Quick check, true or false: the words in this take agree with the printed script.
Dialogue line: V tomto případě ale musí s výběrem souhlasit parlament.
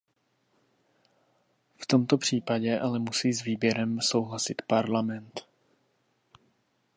true